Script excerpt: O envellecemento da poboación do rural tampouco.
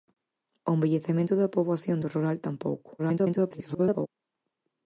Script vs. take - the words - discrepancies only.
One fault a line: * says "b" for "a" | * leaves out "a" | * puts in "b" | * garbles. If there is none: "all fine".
* garbles